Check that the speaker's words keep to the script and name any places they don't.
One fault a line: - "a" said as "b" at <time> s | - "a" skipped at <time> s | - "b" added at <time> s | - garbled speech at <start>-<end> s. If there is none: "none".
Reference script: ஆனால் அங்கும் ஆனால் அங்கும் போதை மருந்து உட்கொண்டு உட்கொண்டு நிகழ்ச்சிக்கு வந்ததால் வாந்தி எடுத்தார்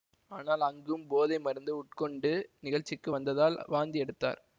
- "ஆனால் அங்கும்" skipped at 1.0 s
- "உட்கொண்டு" skipped at 2.3 s